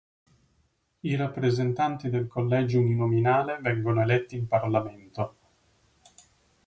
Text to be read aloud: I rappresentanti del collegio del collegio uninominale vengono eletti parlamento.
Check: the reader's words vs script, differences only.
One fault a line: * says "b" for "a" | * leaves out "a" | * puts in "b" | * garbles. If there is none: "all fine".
* leaves out "del collegio"
* puts in "in"